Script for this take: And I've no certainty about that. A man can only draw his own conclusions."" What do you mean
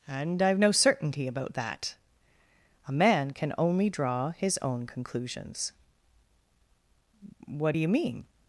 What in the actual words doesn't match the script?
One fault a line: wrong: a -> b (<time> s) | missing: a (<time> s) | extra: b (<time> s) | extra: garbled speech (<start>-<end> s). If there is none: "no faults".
no faults